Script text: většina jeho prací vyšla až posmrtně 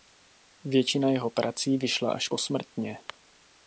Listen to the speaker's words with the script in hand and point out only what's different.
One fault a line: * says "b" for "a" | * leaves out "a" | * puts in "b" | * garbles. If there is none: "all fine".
all fine